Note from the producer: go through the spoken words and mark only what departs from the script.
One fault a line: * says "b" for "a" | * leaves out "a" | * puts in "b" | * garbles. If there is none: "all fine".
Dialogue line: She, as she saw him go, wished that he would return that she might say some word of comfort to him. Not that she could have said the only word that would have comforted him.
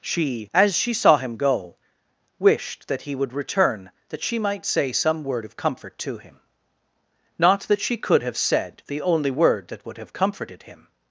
all fine